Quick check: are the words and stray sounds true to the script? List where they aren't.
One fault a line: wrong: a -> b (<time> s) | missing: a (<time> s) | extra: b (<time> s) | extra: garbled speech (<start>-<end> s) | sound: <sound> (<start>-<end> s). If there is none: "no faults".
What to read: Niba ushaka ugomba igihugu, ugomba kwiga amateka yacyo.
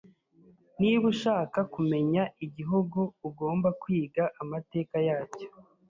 wrong: ugomba -> kumenya (1.7 s)